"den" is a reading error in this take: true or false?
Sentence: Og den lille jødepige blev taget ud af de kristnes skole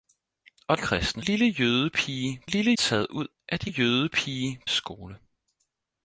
true